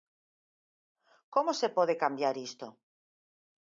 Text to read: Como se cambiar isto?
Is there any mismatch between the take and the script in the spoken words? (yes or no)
yes